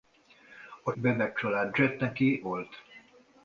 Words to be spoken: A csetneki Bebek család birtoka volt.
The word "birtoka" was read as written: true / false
false